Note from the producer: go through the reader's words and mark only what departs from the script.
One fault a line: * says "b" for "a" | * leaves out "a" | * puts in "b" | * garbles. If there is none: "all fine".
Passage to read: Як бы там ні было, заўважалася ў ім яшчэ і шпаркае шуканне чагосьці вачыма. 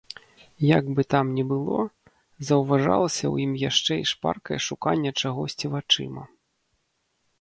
all fine